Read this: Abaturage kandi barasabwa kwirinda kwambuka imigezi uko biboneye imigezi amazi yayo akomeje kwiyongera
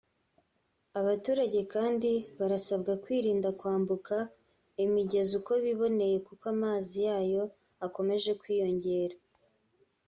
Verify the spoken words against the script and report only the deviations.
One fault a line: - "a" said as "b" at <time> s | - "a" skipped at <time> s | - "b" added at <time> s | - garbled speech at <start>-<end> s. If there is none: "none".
- "imigezi" said as "kuko" at 6.3 s